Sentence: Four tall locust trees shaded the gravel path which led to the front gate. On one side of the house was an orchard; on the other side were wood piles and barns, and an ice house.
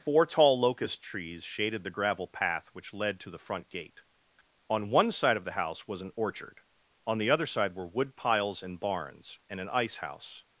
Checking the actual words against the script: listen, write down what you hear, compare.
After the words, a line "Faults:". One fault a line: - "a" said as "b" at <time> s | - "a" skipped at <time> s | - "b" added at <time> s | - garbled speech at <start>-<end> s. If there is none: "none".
Four tall locust trees shaded the gravel path which led to the front gate. On one side of the house was an orchard; on the other side were wood piles and barns, and an ice house.
Faults:
none